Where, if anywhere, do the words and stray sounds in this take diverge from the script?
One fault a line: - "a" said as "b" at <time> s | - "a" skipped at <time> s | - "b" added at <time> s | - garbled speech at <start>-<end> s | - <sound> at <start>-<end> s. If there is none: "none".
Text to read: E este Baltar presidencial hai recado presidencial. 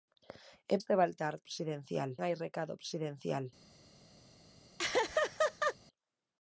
- laugh at 4.8-5.8 s